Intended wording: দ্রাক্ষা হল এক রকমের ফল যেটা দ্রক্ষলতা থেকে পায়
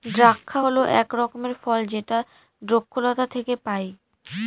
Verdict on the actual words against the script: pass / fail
pass